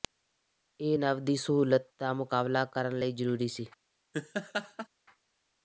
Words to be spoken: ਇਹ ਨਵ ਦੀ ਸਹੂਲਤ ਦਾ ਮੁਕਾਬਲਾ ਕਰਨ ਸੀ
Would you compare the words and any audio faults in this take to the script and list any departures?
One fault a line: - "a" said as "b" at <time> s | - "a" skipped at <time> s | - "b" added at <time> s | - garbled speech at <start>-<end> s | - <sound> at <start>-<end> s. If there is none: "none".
- "ਲਈ ਜ਼ਰੂਰੀ" added at 3.0 s
- laugh at 4.1-4.9 s